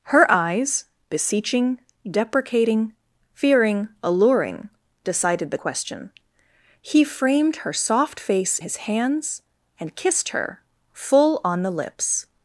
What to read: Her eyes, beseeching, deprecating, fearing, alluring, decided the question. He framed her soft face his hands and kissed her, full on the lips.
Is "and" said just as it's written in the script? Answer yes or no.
yes